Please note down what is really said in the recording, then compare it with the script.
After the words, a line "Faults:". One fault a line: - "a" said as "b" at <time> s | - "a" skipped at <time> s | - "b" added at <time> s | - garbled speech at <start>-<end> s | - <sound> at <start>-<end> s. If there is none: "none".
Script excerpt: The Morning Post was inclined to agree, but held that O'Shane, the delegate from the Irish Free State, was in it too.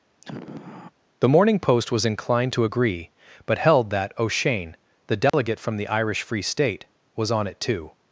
The Morning Post was inclined to agree, but held that O'Shane, the delegate from the Irish Free State, was on it too.
Faults:
- sigh at 0.2-0.9 s
- dropout at 5.3-5.3 s
- "in" said as "on" at 7.3 s